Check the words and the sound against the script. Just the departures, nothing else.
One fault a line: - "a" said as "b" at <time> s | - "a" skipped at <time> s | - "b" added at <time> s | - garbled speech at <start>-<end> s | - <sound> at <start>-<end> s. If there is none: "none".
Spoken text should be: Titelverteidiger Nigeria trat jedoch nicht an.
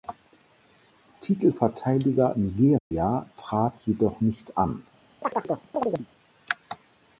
- dropout at 2.8-2.9 s
- chirp at 5.2-6.1 s